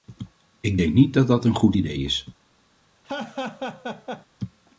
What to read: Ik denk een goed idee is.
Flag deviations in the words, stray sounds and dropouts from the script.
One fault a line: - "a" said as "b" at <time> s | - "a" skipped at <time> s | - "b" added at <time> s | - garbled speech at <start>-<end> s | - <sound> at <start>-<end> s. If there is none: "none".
- "niet dat dat" added at 0.9 s
- laugh at 3.0-4.3 s